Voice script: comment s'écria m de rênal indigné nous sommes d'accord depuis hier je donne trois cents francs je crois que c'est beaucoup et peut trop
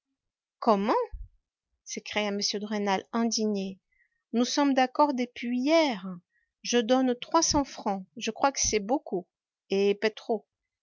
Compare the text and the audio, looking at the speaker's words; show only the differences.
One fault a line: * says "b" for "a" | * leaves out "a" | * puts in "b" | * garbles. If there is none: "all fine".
all fine